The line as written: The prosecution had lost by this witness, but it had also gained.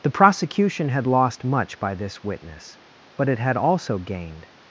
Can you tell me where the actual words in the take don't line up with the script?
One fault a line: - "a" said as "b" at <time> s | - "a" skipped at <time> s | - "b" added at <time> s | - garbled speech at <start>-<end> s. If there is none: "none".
- "much" added at 1.4 s